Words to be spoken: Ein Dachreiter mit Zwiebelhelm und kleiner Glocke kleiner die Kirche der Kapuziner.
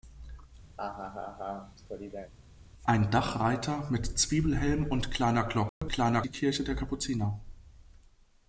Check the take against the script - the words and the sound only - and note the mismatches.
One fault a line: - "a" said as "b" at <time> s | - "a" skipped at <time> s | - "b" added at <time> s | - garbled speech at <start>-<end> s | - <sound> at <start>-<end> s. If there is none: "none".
- laugh at 0.8-2.3 s
- dropout at 5.7-5.8 s